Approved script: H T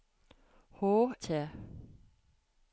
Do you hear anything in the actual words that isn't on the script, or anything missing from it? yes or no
no